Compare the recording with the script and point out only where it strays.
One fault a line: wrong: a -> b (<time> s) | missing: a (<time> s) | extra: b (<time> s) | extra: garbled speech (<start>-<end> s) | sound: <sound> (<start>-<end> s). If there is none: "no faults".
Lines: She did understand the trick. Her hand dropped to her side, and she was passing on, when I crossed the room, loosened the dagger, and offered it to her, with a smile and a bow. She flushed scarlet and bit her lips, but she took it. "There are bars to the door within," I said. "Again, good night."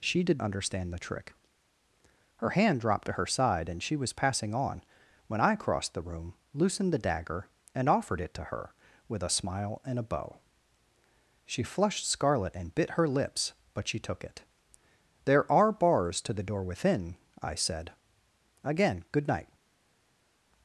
no faults